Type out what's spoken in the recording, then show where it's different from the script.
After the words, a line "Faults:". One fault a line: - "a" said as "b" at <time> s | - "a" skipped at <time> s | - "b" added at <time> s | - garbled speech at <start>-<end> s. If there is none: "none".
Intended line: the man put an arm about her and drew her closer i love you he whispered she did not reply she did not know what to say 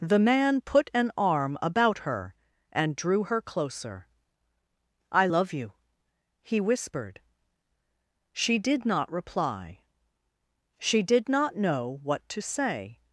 the man put an arm about her and drew her closer i love you he whispered she did not reply she did not know what to say
Faults:
none